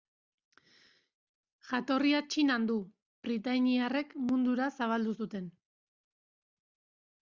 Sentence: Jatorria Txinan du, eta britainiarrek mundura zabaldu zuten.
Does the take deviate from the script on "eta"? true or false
true